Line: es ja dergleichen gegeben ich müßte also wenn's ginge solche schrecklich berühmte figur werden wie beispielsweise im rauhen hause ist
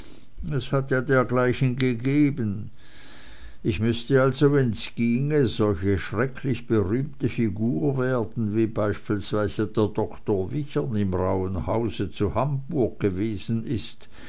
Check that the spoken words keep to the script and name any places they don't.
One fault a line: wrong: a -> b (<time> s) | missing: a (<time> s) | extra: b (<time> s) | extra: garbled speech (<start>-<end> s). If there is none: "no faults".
extra: hat (0.7 s)
extra: der doktor wichern (9.7 s)
extra: zu hamburg gewesen (12.1 s)